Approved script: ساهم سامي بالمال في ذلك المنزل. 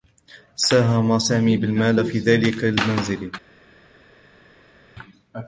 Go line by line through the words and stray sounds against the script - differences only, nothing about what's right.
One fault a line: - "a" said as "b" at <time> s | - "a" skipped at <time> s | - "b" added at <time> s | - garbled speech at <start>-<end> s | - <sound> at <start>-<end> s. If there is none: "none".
none